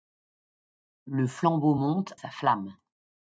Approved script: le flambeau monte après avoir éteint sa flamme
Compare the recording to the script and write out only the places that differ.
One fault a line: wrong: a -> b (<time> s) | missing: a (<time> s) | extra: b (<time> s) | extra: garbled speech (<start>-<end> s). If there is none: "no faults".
missing: après avoir éteint (2.1 s)